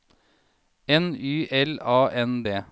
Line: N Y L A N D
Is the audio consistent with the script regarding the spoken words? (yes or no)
yes